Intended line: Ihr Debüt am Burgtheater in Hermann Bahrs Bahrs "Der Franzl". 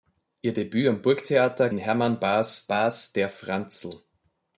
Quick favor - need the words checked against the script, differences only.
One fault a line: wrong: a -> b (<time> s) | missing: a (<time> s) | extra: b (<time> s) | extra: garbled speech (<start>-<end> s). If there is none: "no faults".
no faults